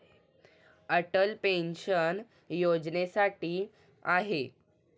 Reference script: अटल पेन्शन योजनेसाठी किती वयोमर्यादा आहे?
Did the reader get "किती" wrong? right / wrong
wrong